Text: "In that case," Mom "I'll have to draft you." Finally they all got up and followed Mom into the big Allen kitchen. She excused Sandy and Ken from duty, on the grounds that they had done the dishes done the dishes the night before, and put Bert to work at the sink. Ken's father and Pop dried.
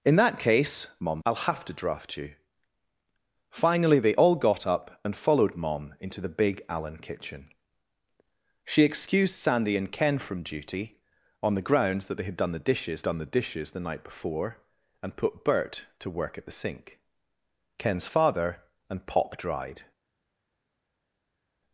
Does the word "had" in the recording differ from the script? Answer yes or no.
no